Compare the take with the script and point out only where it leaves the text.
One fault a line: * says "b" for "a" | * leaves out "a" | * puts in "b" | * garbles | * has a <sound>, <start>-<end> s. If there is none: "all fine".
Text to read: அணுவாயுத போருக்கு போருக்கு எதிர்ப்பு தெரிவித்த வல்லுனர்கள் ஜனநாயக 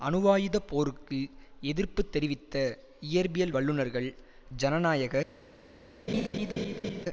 * leaves out "போருக்கு"
* puts in "இயற்பியல்"
* has a laugh, 6.1-7.1 s